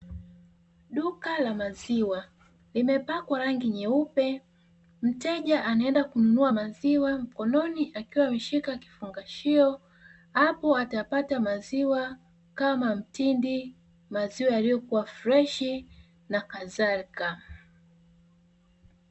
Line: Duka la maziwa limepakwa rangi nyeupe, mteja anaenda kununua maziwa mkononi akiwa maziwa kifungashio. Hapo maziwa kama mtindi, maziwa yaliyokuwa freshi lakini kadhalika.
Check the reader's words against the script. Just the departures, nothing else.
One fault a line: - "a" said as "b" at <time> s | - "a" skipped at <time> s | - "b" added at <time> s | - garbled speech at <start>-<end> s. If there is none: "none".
- "maziwa" said as "ameshika" at 8.3 s
- "atapata" added at 10.8 s
- "lakini" said as "na" at 16.3 s